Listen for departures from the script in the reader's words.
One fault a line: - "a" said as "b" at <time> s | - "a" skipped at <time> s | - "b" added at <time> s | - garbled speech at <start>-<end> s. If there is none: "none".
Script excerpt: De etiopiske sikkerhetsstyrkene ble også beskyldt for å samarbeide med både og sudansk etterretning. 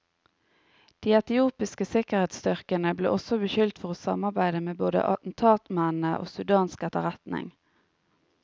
- "attentatmennene" added at 5.2 s